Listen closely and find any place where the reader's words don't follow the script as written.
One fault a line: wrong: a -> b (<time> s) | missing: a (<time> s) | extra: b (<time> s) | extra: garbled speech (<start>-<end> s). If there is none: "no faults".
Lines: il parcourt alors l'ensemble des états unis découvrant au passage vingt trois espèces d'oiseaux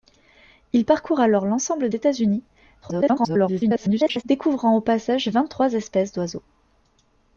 missing: des (1.9 s)
extra: garbled speech (2.8-4.2 s)